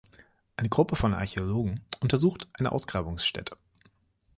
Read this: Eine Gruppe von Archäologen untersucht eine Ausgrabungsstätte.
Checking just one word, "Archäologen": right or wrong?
right